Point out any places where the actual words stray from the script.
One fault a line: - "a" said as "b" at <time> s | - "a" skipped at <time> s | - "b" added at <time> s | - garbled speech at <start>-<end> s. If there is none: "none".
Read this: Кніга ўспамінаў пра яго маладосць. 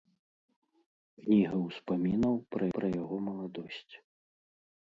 - "пра" added at 2.8 s